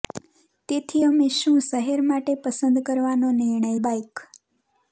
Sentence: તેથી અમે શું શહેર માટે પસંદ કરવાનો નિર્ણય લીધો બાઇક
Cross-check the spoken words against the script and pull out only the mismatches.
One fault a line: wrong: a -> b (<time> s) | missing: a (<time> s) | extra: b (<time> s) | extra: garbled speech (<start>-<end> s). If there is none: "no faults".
missing: લીધો (3.7 s)